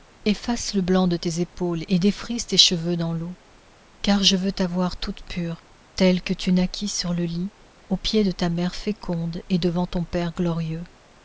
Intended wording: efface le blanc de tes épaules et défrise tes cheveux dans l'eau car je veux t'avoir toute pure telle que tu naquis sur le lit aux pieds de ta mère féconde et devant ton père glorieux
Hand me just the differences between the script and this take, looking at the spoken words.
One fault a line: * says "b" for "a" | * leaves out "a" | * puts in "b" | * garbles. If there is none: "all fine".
all fine